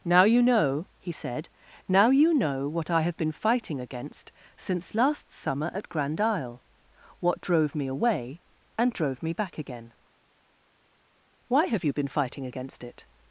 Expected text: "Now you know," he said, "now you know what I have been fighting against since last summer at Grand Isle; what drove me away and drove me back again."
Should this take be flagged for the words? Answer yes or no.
yes